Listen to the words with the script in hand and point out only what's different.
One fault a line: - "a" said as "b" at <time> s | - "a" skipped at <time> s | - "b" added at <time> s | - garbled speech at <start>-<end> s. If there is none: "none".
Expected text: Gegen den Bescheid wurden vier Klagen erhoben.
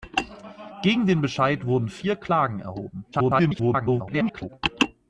- garbled speech at 3.1-4.5 s